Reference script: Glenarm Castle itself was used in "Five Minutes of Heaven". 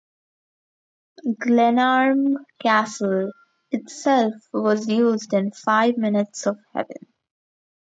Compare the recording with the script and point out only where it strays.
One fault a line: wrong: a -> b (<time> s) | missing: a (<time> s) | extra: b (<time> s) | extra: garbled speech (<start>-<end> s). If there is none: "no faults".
no faults